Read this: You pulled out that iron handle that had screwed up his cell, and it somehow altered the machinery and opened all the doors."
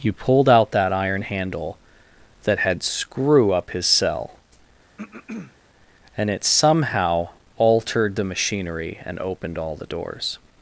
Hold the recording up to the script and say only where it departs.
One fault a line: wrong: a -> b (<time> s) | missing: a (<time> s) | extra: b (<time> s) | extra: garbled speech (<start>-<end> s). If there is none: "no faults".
wrong: screwed -> screw (2.8 s)